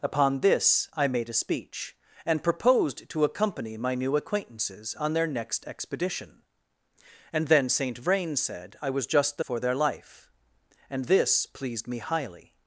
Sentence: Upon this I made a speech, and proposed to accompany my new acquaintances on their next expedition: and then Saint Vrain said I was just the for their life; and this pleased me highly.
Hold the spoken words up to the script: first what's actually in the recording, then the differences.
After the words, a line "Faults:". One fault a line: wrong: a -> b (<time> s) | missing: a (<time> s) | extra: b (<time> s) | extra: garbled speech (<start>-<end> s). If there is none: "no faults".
Upon this I made a speech, and proposed to accompany my new acquaintances on their next expedition: and then Saint Vrain said I was just the for their life; and this pleased me highly.
Faults:
no faults